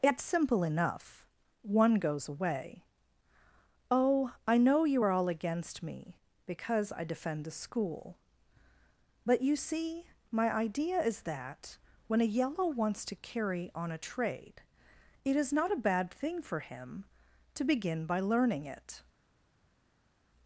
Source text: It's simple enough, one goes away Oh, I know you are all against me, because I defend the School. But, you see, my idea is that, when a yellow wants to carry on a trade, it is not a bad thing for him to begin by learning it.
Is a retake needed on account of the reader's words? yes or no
no